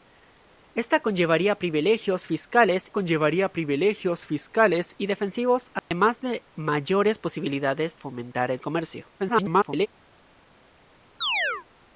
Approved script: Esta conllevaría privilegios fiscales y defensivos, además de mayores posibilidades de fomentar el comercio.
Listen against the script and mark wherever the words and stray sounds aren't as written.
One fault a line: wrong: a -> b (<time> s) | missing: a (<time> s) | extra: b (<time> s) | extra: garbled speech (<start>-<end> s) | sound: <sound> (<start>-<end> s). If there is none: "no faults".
extra: conllevaría privilegios fiscales (2.9 s)
sound: dropout (5.8-5.9 s)
missing: de (8.0 s)
extra: garbled speech (9.2-9.9 s)
sound: chirp (11.2-11.7 s)